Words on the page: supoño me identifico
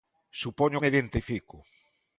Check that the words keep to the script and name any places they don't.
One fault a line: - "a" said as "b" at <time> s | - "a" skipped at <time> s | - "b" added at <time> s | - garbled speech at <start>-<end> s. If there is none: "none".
none